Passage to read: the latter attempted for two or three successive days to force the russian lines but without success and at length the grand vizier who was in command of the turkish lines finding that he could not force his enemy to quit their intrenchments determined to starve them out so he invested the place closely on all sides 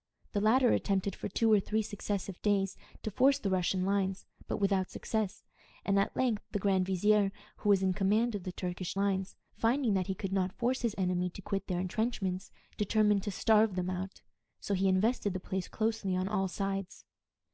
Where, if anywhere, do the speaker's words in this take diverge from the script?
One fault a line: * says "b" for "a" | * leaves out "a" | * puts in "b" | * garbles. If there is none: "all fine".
all fine